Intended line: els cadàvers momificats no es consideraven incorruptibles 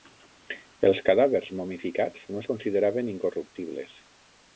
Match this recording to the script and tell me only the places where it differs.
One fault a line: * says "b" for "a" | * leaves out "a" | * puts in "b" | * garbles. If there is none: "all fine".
all fine